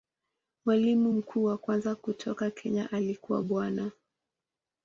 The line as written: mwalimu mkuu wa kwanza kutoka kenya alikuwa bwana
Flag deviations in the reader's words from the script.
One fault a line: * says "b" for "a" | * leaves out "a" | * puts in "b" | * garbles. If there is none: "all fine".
all fine